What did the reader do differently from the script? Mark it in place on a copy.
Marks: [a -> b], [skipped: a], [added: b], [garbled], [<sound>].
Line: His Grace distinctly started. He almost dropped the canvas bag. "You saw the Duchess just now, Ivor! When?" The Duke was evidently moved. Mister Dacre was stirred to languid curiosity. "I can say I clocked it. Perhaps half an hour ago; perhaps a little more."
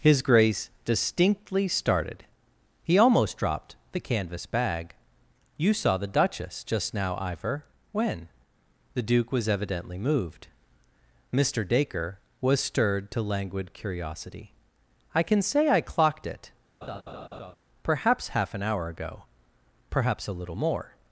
His Grace distinctly started. He almost dropped the canvas bag. "You saw the Duchess just now, Ivor! When?" The Duke was evidently moved. Mister Dacre was stirred to languid curiosity. "I can say I clocked it. [laugh] Perhaps half an hour ago; perhaps a little more."